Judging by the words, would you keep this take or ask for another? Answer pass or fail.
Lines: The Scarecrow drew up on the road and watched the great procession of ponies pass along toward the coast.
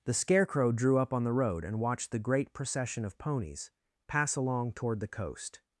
pass